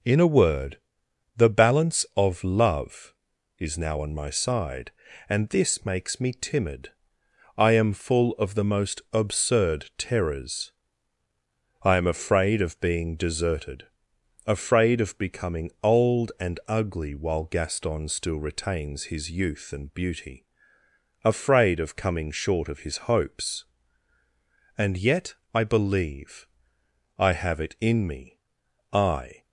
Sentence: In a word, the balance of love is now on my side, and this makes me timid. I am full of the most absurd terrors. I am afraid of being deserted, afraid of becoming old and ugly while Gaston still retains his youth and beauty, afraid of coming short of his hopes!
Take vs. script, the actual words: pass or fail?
fail